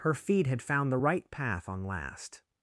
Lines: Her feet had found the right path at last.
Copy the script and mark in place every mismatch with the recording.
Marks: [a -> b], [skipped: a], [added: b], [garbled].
Her feet had found the right path [at -> on] last.